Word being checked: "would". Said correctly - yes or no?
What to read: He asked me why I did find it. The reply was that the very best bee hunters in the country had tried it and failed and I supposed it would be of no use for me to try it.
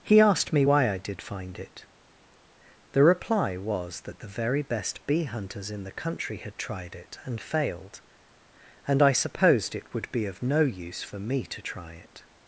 yes